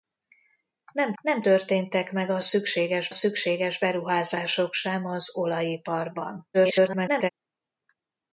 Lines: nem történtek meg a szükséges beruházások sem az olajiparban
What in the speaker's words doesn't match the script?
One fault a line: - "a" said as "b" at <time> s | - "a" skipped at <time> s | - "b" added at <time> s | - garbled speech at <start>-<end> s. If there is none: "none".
- "nem" added at 1.2 s
- "szükséges" added at 3.1 s
- garbled speech at 6.5-7.3 s